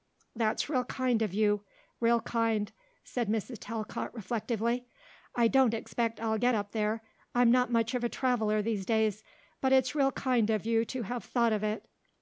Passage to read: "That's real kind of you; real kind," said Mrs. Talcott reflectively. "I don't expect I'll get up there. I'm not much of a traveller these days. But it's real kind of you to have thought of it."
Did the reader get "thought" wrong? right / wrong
right